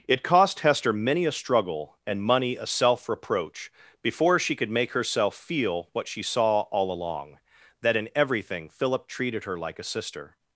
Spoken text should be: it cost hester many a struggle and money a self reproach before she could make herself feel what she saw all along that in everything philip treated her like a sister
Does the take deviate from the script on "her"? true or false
false